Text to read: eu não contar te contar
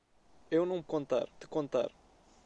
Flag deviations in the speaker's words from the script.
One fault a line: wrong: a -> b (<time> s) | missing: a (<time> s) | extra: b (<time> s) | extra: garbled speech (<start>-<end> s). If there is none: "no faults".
no faults